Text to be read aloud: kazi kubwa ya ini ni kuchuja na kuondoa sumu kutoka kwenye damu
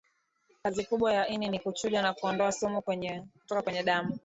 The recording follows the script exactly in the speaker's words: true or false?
true